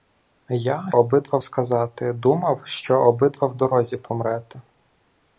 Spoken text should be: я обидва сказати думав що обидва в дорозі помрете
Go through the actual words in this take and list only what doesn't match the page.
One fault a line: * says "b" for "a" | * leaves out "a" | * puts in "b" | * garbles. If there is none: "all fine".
all fine